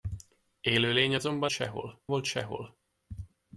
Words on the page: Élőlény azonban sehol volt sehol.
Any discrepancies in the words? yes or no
no